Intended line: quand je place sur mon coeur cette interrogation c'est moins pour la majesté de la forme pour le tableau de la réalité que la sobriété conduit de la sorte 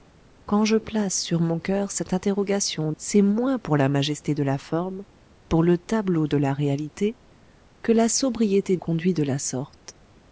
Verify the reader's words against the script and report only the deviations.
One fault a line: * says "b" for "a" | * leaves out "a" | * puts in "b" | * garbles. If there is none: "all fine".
all fine